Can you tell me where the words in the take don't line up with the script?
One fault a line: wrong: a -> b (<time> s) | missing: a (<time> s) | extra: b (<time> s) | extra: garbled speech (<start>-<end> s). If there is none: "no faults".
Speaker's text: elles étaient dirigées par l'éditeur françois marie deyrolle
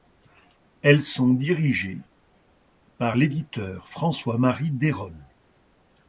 wrong: étaient -> sont (1.0 s)